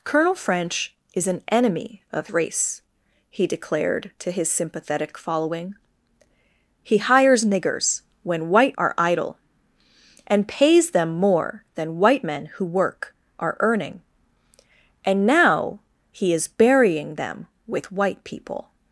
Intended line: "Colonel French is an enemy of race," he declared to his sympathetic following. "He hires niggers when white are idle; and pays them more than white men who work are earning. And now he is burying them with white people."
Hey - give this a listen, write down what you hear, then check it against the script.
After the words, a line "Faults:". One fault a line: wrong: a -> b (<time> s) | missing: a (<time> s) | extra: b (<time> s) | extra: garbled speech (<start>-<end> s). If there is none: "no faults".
"Colonel French is an enemy of race," he declared to his sympathetic following. "He hires niggers when white are idle; and pays them more than white men who work are earning. And now he is burying them with white people."
Faults:
no faults